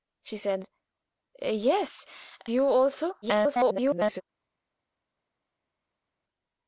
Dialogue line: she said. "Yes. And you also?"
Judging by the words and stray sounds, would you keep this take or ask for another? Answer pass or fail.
fail